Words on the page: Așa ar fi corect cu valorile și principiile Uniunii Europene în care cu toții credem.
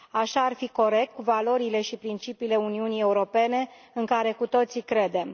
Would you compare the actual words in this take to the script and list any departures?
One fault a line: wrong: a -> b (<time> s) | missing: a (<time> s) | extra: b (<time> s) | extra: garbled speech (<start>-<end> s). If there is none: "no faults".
no faults